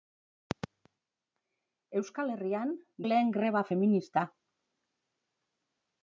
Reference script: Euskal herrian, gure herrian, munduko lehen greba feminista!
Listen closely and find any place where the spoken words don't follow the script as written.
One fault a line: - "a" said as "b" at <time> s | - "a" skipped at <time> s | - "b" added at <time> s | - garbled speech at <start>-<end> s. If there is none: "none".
- "gure herrian munduko" skipped at 2.7 s